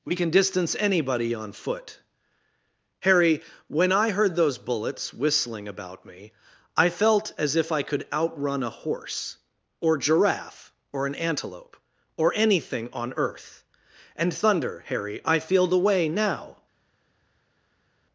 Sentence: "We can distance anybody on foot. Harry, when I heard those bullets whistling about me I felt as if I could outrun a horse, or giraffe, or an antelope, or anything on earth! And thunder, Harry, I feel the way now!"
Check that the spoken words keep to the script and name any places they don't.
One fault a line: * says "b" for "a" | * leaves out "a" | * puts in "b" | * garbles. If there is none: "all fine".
all fine